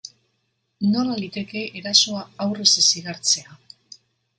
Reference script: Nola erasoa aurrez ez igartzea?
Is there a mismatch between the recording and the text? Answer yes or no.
yes